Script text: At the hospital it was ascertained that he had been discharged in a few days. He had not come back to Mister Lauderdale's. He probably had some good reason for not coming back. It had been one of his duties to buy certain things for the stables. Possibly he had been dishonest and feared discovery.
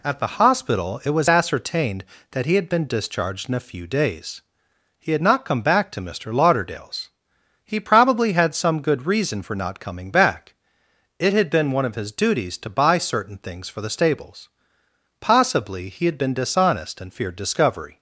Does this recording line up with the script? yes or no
yes